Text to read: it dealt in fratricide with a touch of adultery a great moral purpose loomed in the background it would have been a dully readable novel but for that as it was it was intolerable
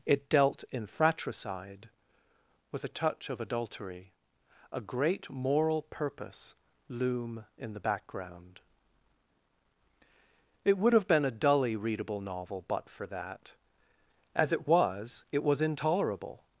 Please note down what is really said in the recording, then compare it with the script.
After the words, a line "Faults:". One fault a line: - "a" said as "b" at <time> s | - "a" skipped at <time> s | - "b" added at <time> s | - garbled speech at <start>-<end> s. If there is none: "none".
it dealt in fratricide with a touch of adultery a great moral purpose loom in the background it would have been a dully readable novel but for that as it was it was intolerable
Faults:
- "loomed" said as "loom" at 6.9 s